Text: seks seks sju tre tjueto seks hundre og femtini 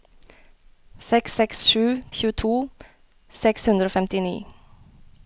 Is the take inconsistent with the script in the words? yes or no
yes